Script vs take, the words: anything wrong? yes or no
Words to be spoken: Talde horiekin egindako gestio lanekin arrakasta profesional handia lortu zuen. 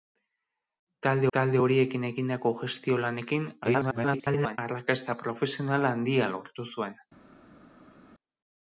yes